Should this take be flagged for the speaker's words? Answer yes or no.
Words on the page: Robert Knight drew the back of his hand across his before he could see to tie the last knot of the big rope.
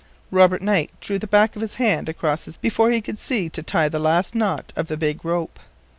no